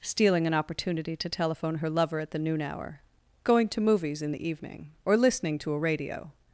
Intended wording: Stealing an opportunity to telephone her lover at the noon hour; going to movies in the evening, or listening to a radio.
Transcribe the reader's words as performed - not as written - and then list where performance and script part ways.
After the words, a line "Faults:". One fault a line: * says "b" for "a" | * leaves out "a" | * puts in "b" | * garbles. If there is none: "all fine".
Stealing an opportunity to telephone her lover at the noon hour; going to movies in the evening, or listening to a radio.
Faults:
all fine